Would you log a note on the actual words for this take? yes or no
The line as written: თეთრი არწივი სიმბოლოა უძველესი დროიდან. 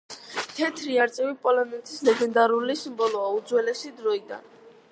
yes